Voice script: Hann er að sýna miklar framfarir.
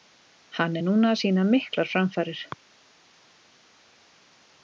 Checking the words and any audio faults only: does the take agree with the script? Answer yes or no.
no